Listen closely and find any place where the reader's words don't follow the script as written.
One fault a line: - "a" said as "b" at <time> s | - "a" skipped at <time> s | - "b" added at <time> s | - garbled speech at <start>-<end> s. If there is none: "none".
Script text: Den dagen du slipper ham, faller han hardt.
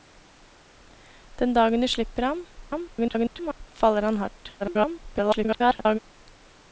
- garbled speech at 2.6-3.7 s
- garbled speech at 4.6-6.0 s